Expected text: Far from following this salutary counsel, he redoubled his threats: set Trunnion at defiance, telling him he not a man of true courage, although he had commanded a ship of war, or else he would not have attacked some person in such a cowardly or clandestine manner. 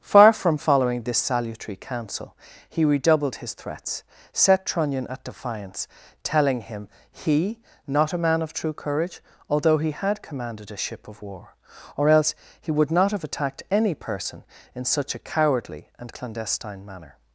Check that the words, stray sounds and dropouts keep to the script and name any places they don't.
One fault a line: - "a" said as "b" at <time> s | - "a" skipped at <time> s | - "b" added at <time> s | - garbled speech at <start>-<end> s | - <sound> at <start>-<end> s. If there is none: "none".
- "some" said as "any" at 13.7 s
- "or" said as "and" at 16.0 s